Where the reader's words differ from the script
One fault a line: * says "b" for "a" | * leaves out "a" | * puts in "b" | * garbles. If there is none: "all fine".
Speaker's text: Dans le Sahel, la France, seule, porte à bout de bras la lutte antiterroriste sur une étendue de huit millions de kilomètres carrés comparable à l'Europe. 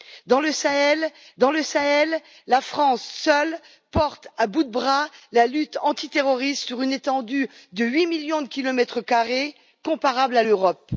* puts in "dans le Sahel"